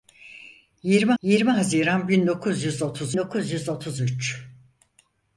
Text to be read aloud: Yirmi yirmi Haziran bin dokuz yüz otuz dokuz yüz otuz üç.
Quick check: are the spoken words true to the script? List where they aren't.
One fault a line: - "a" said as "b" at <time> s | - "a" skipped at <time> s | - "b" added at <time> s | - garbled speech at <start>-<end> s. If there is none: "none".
none